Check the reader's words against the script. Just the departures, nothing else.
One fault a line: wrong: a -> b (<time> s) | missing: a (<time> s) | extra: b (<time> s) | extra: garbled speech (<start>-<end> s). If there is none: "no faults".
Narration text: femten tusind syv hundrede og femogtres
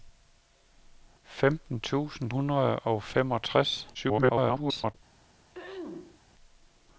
missing: syv (2.3 s)
extra: garbled speech (3.9-4.9 s)